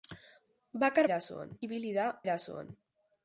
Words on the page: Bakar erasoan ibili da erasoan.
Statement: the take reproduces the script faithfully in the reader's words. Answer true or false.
true